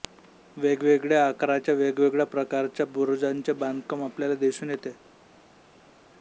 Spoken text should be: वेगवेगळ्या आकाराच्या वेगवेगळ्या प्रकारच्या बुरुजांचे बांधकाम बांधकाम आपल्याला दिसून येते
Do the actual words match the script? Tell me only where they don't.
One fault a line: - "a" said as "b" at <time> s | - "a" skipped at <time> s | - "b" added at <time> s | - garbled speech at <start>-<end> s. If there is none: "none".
- "बांधकाम" skipped at 4.0 s